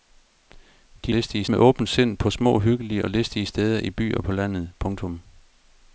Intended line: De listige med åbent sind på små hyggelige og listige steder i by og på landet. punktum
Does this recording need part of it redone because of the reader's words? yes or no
no